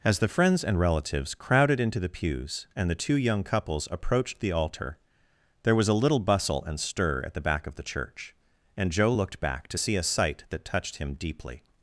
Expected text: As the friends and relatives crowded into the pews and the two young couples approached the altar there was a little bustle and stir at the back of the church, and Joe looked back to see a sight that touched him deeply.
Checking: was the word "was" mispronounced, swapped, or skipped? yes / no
no